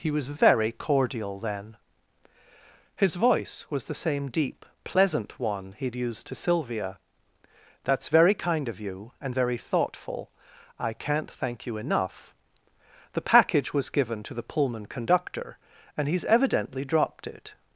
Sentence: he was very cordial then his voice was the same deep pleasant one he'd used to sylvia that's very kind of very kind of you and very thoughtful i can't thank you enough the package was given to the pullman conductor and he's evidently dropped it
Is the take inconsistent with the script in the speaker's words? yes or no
yes